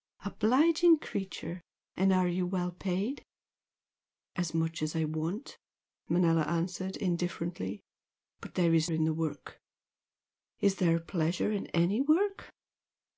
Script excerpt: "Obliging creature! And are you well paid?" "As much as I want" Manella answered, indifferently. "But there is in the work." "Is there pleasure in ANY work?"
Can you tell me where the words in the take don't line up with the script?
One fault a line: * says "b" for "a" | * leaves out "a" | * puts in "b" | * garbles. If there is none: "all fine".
all fine